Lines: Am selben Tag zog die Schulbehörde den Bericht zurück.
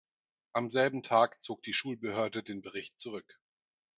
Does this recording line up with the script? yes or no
yes